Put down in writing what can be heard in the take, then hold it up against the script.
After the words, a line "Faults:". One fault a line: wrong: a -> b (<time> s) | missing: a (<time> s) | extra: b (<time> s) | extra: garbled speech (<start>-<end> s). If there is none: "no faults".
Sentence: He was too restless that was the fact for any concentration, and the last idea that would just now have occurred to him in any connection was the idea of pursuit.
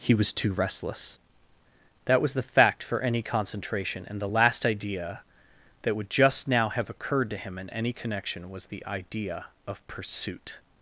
He was too restless that was the fact for any concentration, and the last idea that would just now have occurred to him in any connection was the idea of pursuit.
Faults:
no faults